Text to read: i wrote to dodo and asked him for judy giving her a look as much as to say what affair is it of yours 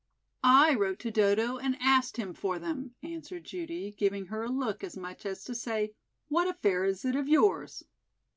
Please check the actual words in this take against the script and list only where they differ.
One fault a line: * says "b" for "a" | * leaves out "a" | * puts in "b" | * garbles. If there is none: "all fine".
* puts in "them answered"